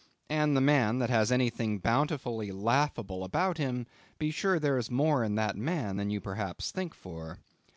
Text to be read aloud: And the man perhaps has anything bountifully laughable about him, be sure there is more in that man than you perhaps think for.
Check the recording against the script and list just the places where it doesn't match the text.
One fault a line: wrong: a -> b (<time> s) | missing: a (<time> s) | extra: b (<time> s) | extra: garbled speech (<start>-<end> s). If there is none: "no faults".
wrong: perhaps -> that (1.0 s)